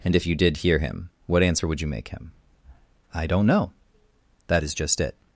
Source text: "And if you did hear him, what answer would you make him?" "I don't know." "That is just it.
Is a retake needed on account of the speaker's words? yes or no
no